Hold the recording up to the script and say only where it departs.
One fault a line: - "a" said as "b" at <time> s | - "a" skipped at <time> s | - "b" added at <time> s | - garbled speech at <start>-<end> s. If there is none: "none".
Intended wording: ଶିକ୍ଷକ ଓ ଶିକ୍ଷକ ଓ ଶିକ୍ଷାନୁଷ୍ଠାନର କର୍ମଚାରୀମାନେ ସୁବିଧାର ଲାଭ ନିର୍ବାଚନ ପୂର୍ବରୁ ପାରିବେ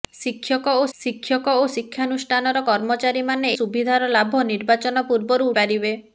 none